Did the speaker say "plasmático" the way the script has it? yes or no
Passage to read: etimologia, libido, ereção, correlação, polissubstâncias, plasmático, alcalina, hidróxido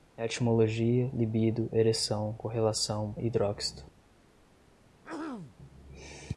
no